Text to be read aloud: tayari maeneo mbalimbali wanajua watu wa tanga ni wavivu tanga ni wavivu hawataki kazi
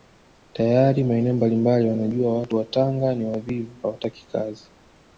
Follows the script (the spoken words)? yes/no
no